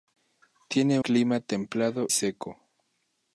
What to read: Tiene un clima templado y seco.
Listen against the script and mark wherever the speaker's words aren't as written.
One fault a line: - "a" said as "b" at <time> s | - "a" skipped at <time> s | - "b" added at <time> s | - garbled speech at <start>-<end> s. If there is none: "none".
- "un" skipped at 1.0 s
- "y" skipped at 2.1 s